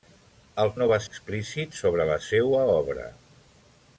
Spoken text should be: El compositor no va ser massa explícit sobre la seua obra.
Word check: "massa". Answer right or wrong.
wrong